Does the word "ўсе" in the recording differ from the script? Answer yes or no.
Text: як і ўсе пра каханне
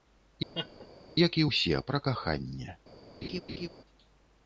no